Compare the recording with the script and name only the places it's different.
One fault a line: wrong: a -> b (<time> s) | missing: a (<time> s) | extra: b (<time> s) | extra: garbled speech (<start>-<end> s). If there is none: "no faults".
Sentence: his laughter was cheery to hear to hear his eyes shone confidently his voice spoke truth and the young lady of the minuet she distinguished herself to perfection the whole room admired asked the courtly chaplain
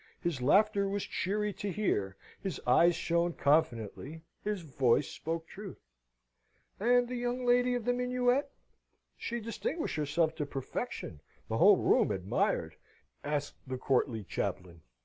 missing: to hear (2.2 s)